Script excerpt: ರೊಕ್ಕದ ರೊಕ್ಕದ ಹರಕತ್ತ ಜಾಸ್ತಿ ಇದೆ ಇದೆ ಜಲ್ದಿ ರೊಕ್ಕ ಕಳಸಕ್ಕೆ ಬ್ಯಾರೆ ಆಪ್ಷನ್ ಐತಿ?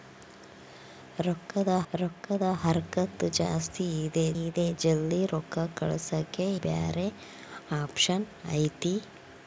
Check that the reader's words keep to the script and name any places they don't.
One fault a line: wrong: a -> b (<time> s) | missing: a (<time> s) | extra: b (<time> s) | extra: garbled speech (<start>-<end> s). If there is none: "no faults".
no faults